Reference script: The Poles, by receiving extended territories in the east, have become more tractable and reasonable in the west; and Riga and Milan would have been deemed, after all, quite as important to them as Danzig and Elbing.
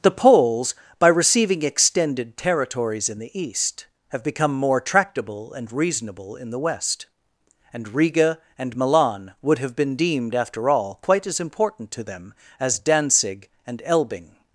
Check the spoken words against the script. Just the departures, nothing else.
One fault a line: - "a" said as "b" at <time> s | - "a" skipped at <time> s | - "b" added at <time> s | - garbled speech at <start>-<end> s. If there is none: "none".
none